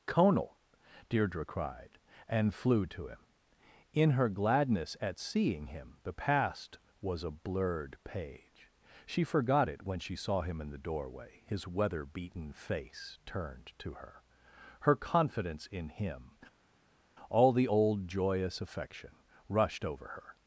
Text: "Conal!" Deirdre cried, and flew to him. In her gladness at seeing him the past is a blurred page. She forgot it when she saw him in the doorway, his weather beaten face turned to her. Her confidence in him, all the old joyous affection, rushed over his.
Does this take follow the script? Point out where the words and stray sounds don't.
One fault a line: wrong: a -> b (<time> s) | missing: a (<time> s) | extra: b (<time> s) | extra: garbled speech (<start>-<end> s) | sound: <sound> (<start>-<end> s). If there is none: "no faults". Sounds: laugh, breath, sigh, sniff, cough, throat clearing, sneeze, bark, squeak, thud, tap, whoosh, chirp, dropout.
wrong: is -> was (7.0 s)
wrong: his -> her (20.1 s)